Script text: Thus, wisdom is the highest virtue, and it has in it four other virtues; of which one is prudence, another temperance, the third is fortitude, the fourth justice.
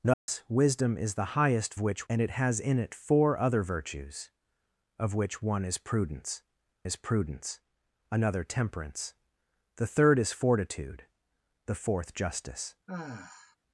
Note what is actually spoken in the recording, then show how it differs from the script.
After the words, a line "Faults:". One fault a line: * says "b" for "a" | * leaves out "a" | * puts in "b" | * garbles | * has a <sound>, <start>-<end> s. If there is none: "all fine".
Thus, wisdom is the highest which, and it has in it four other virtues; of which one is prudence is prudence, another temperance, the third is fortitude, the fourth justice.
Faults:
* has a dropout, 0.1-0.3 s
* says "which" for "virtue"
* puts in "is prudence"
* has a sigh, 12.9-13.6 s